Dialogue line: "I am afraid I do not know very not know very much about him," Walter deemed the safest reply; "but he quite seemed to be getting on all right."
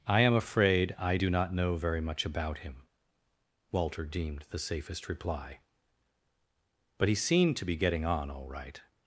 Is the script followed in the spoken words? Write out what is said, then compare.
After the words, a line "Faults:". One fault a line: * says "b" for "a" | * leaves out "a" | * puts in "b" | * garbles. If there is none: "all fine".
"I am afraid I do not know very much about him," Walter deemed the safest reply; "but he seemed to be getting on all right."
Faults:
* leaves out "not know very"
* leaves out "quite"